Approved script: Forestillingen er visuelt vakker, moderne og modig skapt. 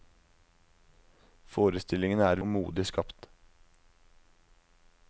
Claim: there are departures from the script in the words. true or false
true